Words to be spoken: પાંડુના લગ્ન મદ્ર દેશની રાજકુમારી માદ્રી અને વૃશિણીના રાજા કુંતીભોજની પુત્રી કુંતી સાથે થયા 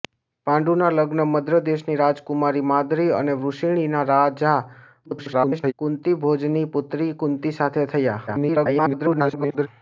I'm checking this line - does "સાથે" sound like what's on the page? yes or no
yes